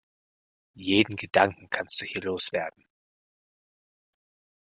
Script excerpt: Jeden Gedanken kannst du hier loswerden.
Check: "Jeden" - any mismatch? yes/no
no